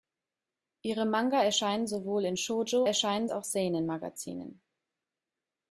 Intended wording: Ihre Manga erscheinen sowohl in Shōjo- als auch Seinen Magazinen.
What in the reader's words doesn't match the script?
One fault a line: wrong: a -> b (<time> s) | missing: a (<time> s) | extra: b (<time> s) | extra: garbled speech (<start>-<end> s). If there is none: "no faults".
wrong: als -> erscheinen (2.8 s)